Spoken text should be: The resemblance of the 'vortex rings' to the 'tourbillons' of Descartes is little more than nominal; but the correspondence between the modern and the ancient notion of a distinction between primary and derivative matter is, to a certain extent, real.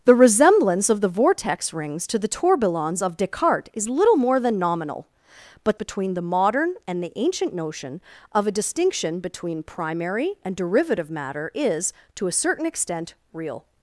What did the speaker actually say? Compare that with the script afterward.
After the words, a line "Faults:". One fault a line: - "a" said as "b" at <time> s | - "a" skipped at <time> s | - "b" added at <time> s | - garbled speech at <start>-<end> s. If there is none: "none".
The resemblance of the 'vortex rings' to the 'tourbillons' of Descartes is little more than nominal; but between the modern and the ancient notion of a distinction between primary and derivative matter is, to a certain extent, real.
Faults:
- "the correspondence" skipped at 5.8 s